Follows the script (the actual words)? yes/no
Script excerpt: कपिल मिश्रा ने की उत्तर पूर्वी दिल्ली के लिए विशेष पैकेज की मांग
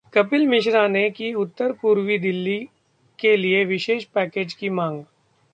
yes